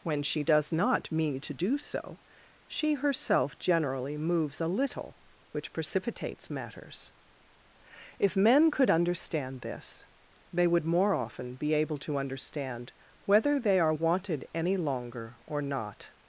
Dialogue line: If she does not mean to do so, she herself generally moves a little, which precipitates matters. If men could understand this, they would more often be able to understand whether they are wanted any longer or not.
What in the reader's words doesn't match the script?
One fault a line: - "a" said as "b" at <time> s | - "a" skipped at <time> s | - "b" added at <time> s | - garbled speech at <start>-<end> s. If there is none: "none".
- "If" said as "When" at 0.0 s